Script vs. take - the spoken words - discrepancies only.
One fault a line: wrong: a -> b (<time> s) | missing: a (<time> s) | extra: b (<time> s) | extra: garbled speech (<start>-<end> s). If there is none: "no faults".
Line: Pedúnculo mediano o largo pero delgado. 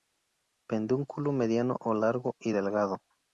wrong: pero -> y (2.4 s)